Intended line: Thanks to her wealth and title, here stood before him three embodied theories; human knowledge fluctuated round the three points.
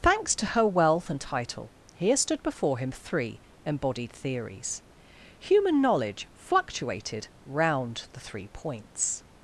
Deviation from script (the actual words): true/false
false